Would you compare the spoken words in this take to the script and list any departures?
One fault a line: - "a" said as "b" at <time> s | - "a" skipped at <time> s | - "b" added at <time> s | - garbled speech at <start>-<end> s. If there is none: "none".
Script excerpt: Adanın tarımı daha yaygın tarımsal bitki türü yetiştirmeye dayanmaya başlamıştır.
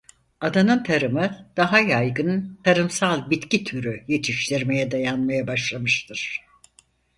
none